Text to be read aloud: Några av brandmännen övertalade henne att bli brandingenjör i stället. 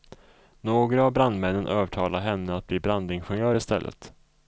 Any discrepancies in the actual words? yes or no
no